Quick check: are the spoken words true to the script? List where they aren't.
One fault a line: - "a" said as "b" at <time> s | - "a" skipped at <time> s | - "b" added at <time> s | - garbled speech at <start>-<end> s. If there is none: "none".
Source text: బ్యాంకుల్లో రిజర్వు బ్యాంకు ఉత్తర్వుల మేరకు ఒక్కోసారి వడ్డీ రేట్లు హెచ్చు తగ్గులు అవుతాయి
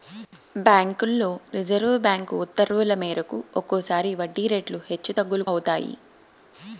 none